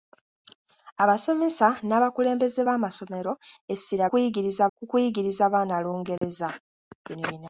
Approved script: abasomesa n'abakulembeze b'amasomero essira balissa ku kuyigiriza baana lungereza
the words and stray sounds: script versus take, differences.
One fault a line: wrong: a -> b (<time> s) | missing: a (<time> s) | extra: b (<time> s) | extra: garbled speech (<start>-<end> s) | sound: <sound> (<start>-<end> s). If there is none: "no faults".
wrong: balissa -> kuyigiriza (4.1 s)
sound: dropout (6.2-6.2 s)